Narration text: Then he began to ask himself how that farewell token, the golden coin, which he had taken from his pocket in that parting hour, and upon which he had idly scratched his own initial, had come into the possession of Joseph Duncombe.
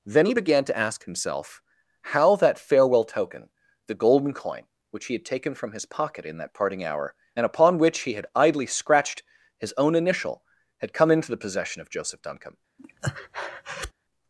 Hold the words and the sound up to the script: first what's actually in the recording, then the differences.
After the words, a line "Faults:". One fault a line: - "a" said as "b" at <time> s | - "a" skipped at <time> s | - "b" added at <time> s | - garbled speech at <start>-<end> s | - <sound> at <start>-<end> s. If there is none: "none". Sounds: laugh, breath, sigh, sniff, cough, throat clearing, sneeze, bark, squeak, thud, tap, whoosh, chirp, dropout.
Then he began to ask himself how that farewell token, the golden coin, which he had taken from his pocket in that parting hour, and upon which he had idly scratched his own initial, had come into the possession of Joseph Duncombe.
Faults:
- breath at 12.8-13.9 s